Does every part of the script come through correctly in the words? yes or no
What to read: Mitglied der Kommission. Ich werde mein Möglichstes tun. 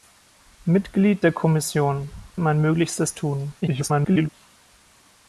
no